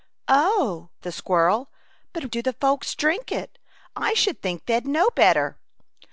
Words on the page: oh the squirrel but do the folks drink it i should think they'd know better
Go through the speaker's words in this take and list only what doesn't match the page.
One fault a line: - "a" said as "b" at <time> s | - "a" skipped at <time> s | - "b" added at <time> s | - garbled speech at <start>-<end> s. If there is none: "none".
none